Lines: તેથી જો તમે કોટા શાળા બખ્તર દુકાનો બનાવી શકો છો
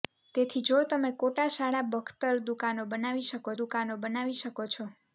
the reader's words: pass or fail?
fail